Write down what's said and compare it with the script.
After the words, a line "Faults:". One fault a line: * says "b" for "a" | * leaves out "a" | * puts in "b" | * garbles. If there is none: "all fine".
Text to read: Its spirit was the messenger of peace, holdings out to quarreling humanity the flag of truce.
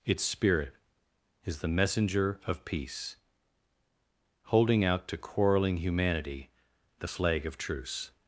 Its spirit is the messenger of peace, holding out to quarreling humanity the flag of truce.
Faults:
* says "is" for "was"
* says "holding" for "holdings"